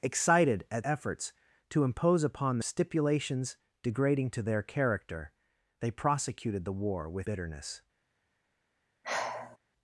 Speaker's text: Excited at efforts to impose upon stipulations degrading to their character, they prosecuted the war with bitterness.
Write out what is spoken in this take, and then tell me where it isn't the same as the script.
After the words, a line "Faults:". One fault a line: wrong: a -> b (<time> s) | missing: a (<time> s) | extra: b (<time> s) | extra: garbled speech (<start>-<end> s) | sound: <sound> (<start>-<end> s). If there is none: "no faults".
Excited at efforts to impose upon stipulations degrading to their character, they prosecuted the war with bitterness.
Faults:
sound: sigh (9.0-9.6 s)